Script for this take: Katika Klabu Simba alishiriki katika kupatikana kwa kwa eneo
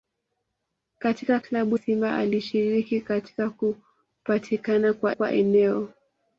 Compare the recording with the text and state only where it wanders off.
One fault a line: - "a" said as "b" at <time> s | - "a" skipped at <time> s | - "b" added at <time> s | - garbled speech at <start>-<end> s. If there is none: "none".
none